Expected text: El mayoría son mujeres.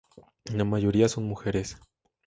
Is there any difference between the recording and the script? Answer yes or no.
yes